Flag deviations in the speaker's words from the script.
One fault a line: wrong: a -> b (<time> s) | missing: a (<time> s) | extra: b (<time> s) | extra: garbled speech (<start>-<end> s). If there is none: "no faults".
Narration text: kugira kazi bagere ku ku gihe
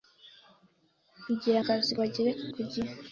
no faults